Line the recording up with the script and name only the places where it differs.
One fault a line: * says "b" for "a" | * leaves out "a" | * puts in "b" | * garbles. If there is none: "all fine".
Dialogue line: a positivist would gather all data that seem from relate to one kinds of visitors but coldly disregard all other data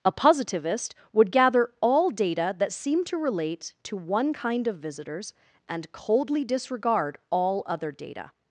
* says "to" for "from"
* says "kind" for "kinds"
* says "and" for "but"